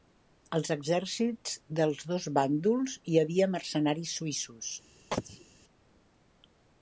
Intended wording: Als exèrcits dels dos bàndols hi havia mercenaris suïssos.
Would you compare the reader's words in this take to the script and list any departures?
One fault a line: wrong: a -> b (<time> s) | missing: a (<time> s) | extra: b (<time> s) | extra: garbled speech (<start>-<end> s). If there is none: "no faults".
no faults